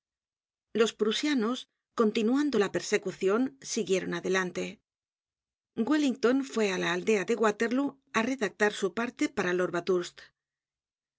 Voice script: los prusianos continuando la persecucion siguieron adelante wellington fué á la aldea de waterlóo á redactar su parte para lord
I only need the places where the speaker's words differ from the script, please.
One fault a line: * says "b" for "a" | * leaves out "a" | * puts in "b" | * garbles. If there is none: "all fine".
all fine